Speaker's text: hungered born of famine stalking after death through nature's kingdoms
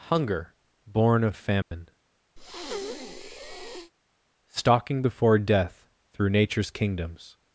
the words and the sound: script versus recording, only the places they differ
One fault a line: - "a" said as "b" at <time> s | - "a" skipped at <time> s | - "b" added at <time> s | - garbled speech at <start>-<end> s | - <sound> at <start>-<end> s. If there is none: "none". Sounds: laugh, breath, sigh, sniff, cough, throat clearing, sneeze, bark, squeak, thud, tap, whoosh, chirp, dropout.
- "hungered" said as "hunger" at 0.1 s
- dropout at 1.6-1.7 s
- breath at 2.4-3.9 s
- "after" said as "before" at 5.0 s